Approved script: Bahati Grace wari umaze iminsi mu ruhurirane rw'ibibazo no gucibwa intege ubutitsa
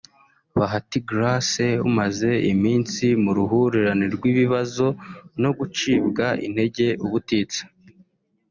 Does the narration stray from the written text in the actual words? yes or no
yes